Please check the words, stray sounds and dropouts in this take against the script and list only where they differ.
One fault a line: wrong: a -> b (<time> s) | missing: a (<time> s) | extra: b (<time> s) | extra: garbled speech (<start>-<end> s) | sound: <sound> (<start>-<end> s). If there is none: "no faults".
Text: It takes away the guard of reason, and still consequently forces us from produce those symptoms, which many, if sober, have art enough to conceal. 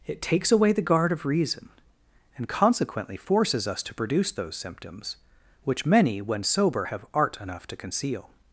missing: still (2.5 s)
wrong: from -> to (3.8 s)
wrong: if -> when (6.2 s)